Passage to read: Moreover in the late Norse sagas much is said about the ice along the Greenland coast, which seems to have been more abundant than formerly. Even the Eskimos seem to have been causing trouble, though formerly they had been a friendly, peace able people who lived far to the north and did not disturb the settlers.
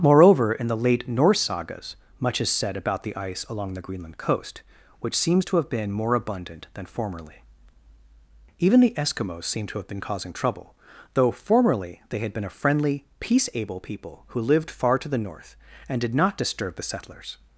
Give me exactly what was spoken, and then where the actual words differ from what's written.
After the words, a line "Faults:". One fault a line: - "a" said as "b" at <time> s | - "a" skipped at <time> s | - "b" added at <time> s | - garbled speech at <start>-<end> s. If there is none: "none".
Moreover in the late Norse sagas much is said about the ice along the Greenland coast, which seems to have been more abundant than formerly. Even the Eskimos seem to have been causing trouble, though formerly they had been a friendly, peace able people who lived far to the north and did not disturb the settlers.
Faults:
none